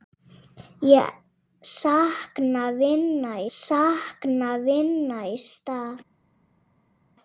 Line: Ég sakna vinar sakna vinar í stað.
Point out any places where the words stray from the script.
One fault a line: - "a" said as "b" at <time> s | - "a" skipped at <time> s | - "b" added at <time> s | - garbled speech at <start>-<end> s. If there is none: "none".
none